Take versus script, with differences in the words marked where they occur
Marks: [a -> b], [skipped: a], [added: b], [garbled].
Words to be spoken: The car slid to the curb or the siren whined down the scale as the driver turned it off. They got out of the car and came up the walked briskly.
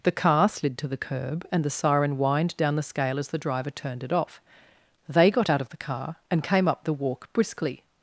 The car slid to the curb [or -> and] the siren whined down the scale as the driver turned it off. They got out of the car and came up the [walked -> walk] briskly.